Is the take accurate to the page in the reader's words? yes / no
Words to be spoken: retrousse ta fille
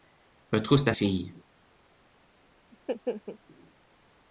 yes